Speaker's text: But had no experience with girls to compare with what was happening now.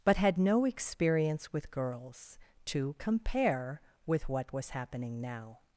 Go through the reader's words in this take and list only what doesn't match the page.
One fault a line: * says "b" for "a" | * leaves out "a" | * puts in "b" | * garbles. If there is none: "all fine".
all fine